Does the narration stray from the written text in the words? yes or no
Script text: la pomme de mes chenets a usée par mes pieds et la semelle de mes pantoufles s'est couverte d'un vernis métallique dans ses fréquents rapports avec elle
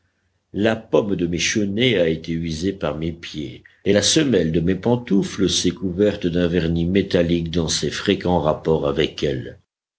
yes